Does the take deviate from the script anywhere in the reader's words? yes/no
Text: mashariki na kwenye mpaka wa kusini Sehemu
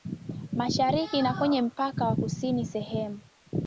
no